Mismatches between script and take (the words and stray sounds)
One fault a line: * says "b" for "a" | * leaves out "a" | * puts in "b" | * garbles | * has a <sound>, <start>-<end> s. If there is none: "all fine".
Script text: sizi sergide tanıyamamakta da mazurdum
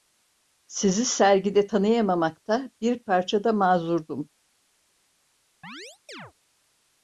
* puts in "bir parça"
* has a chirp, 5.6-6.3 s